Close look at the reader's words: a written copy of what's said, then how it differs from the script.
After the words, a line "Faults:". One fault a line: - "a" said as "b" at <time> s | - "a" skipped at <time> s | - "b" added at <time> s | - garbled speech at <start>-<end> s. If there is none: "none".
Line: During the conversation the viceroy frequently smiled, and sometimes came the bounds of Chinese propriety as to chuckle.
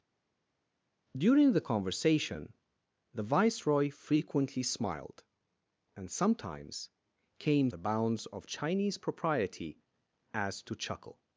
During the conversation the viceroy frequently smiled, and sometimes came the bounds of Chinese propriety as to chuckle.
Faults:
none